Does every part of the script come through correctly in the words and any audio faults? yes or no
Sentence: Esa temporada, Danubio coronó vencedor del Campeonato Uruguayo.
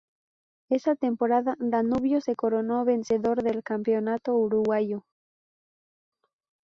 no